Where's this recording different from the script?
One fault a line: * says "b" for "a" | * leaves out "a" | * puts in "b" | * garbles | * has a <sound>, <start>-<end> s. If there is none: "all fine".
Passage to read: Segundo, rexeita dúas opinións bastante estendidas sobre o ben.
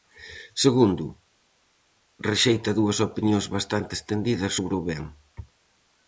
all fine